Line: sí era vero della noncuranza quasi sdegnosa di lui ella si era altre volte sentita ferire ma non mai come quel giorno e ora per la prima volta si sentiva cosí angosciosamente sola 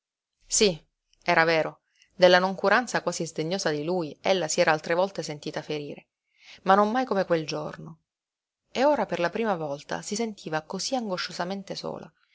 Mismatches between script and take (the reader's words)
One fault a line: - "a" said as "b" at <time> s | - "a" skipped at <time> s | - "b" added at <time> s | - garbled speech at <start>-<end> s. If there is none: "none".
none